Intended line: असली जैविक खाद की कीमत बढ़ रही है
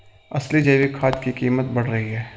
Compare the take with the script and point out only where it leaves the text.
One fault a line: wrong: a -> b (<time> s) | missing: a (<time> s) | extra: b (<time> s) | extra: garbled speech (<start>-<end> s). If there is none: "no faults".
no faults